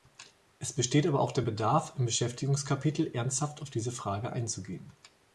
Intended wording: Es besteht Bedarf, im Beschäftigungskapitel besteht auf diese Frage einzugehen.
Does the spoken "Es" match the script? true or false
true